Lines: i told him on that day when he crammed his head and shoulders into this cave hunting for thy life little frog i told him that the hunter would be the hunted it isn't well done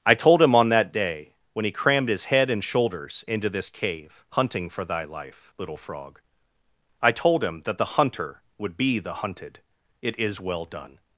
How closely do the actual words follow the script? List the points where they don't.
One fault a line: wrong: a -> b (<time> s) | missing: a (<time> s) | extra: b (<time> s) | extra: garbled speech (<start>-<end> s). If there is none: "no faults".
wrong: isn't -> is (10.2 s)